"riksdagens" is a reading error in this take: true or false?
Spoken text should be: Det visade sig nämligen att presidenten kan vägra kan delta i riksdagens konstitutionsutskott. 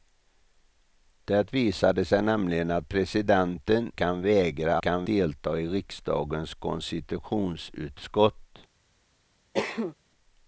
false